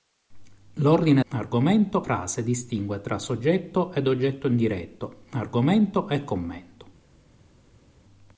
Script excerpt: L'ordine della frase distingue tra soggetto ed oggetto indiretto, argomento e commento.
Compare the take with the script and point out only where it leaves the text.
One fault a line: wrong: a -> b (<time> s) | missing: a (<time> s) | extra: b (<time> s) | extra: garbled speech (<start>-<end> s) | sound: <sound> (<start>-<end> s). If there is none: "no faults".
wrong: della -> argomento (1.3 s)